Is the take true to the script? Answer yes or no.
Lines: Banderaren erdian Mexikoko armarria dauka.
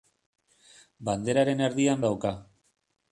no